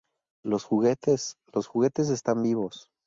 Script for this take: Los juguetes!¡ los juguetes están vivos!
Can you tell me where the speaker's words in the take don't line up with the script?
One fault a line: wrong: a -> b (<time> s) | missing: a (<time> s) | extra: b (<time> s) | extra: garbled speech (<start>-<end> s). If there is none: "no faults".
no faults